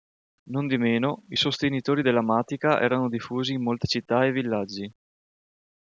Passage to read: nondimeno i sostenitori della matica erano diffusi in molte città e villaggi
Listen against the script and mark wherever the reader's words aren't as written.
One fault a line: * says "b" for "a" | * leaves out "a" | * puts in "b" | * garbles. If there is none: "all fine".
all fine